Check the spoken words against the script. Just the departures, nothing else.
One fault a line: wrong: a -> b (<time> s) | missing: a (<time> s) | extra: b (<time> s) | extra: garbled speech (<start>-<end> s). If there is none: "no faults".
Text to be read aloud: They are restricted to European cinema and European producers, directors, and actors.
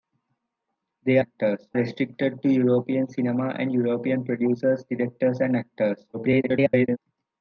wrong: are -> actors (1.2 s)
extra: garbled speech (6.1-7.0 s)